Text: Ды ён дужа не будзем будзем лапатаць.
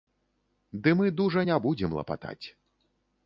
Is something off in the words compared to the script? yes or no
yes